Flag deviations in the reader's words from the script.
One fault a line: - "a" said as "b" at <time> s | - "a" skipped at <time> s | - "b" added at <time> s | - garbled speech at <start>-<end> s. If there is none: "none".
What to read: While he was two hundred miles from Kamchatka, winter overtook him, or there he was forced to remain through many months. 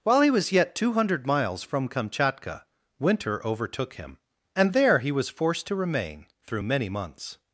- "yet" added at 0.5 s
- "or" said as "and" at 4.5 s